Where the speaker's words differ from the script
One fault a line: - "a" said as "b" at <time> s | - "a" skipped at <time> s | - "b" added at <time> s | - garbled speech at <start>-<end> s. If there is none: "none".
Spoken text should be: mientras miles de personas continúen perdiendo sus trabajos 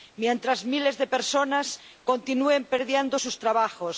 none